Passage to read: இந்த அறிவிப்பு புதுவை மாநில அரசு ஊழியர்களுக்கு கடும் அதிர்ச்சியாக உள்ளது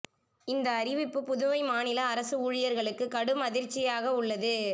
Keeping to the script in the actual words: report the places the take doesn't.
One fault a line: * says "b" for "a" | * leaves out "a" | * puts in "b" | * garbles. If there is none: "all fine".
all fine